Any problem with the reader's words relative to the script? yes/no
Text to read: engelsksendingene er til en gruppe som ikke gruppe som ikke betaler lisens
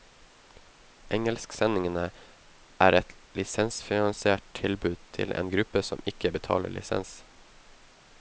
yes